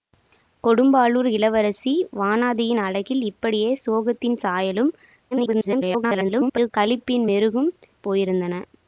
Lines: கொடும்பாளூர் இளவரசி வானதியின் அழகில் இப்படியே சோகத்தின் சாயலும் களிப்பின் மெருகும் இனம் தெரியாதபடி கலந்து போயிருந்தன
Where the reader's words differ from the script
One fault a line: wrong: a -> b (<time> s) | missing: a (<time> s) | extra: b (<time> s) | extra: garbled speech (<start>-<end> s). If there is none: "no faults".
extra: garbled speech (5.3-6.7 s)
missing: இனம் தெரியாதபடி கலந்து (7.7 s)